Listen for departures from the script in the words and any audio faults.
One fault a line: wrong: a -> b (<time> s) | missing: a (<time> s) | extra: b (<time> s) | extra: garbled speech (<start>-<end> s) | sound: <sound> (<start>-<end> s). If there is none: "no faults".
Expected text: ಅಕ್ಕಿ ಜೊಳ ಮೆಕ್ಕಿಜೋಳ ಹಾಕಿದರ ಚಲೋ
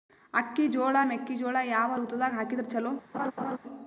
extra: ಯಾವ ಋತುದಾಗ (1.6 s)
sound: laugh (3.1-3.6 s)